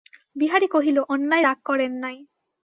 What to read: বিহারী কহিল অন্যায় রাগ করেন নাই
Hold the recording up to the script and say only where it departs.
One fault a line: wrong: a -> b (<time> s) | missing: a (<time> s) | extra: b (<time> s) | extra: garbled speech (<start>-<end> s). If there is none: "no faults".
no faults